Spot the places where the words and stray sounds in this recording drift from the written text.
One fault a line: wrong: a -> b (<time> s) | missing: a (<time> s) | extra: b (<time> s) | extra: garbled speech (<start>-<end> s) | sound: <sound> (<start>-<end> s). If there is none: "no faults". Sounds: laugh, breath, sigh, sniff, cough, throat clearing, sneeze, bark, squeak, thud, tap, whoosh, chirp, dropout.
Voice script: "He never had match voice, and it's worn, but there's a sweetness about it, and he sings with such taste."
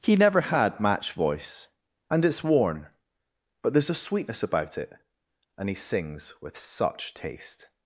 no faults